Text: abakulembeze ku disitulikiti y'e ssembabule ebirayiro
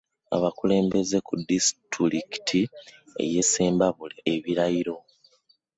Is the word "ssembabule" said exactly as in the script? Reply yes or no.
yes